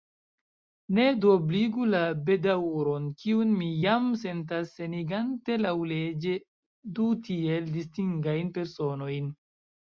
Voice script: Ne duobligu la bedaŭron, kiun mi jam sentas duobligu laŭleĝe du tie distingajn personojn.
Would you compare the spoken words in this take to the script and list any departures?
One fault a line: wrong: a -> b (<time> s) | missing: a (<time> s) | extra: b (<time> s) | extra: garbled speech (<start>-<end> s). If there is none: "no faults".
wrong: duobligu -> senigante (4.8 s)
wrong: tie -> tiel (7.3 s)